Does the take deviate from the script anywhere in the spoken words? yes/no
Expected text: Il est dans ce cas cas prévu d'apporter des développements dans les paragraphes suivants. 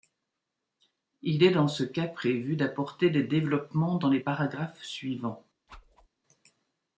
yes